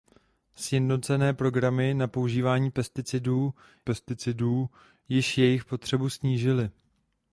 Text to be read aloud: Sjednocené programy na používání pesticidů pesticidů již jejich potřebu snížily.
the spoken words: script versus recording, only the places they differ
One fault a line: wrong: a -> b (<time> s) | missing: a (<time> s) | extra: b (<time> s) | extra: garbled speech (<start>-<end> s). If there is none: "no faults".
no faults